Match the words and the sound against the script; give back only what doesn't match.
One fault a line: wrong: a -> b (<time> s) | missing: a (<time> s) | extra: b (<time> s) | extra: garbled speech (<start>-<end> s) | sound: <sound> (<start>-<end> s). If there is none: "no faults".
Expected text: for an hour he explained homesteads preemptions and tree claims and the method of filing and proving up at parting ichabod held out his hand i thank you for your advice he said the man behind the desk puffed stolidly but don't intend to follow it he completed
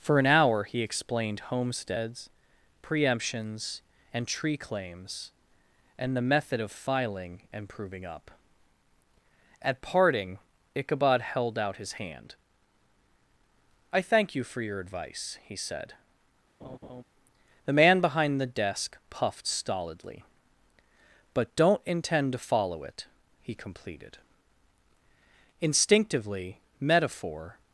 sound: laugh (16.6-17.0 s)
extra: instinctively metaphor (25.6 s)